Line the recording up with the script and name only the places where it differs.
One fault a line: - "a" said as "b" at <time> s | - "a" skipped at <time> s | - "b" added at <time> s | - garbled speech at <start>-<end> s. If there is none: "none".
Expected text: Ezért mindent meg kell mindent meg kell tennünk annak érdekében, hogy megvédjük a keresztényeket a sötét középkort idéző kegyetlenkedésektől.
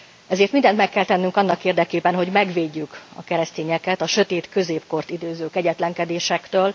- "mindent meg kell" skipped at 1.1 s